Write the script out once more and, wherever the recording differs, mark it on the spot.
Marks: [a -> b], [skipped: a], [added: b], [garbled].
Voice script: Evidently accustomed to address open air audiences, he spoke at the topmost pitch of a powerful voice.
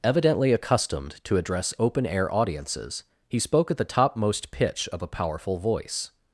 Evidently accustomed to address open air audiences, he spoke at the topmost pitch of a powerful voice.